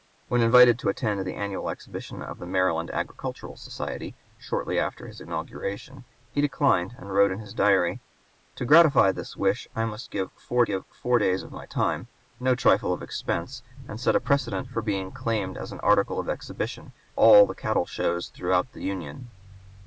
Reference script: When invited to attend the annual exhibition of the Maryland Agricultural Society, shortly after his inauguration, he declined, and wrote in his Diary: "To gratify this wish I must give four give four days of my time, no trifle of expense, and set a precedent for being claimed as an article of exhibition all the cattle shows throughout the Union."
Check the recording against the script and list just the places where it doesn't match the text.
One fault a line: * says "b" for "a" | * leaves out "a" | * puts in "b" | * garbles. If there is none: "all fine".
all fine